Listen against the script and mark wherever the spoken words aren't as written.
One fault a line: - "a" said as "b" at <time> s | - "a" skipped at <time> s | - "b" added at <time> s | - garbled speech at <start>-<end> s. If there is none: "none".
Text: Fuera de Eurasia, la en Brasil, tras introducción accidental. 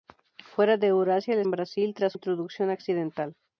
none